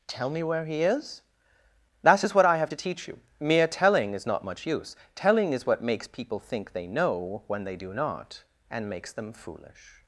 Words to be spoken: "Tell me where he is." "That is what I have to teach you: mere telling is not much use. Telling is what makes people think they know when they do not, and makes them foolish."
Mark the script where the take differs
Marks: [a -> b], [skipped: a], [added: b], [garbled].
"Tell me where he is." "That is what I have to teach you: mere telling is not much use. Telling is what makes people think they know when they do not, and makes them foolish."